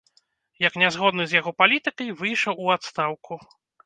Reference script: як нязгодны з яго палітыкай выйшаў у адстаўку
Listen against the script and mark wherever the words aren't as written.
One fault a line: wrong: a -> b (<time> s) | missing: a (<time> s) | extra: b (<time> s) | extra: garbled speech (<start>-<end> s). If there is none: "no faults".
no faults